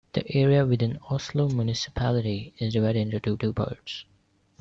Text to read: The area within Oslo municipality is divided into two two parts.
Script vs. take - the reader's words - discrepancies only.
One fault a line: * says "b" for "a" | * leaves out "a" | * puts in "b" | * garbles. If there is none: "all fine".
all fine